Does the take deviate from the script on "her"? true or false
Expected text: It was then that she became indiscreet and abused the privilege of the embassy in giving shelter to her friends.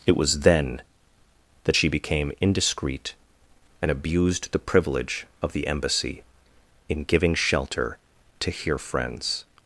true